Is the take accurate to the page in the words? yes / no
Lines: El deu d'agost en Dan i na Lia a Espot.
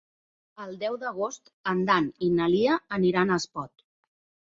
no